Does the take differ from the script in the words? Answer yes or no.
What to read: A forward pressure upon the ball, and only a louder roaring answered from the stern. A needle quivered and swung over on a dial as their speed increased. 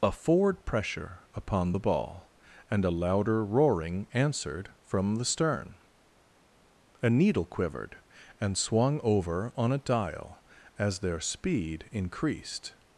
yes